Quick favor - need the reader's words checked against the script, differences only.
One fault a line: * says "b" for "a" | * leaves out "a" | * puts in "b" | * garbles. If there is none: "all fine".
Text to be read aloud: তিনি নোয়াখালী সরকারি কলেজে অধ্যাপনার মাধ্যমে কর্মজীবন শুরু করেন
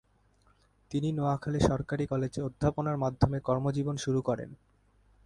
all fine